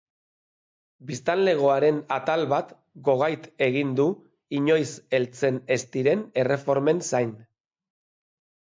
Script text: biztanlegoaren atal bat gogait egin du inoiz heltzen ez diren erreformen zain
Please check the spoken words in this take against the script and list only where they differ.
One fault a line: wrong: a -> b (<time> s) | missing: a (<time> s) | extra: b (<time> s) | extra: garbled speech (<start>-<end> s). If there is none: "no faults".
no faults